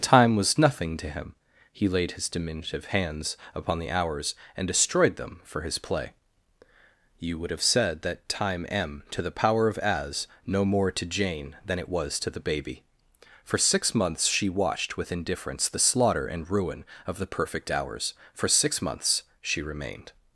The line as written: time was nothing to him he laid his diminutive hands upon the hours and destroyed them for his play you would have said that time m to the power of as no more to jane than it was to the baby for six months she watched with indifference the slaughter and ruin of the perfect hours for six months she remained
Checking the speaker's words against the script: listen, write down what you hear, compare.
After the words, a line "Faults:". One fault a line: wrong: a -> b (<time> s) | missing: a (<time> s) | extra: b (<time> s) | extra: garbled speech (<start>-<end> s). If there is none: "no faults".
time was nothing to him he laid his diminutive hands upon the hours and destroyed them for his play you would have said that time m to the power of as no more to jane than it was to the baby for six months she watched with indifference the slaughter and ruin of the perfect hours for six months she remained
Faults:
no faults